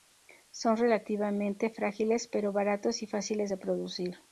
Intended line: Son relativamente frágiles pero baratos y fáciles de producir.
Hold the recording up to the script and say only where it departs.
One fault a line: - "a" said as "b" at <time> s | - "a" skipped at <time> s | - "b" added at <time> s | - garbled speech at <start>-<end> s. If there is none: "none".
none